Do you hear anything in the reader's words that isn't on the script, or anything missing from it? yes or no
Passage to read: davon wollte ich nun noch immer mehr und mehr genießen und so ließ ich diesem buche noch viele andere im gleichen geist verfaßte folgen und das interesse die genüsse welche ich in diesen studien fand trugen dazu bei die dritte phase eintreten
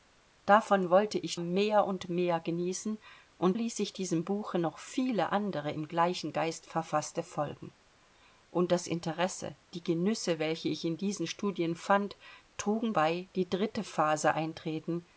yes